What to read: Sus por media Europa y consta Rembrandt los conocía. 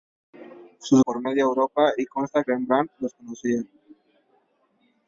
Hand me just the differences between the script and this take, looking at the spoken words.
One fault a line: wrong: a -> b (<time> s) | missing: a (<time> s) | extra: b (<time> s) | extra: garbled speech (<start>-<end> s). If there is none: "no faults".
no faults